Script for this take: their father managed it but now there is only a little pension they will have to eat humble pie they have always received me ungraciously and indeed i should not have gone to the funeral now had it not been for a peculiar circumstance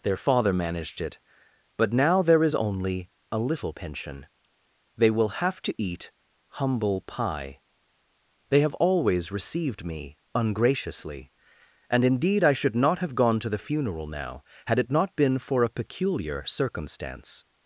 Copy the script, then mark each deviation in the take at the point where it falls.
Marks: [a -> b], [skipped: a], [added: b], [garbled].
their father managed it but now there is only a little pension they will have to eat humble pie they have always received me ungraciously and indeed i should not have gone to the funeral now had it not been for a peculiar circumstance